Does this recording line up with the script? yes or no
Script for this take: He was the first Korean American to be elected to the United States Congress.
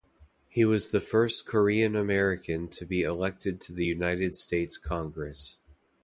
yes